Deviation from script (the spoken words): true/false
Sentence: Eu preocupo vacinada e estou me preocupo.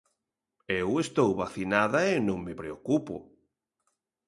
true